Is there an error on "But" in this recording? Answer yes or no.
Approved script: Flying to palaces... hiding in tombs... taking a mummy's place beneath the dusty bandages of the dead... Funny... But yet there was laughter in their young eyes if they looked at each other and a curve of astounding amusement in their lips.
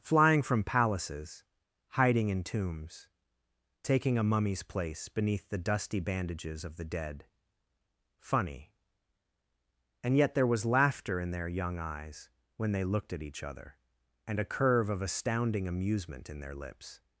yes